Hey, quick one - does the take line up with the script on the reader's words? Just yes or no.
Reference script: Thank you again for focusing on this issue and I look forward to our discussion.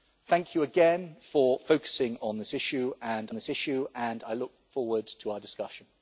no